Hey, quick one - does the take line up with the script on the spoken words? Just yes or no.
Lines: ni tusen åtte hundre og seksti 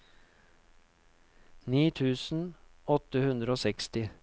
yes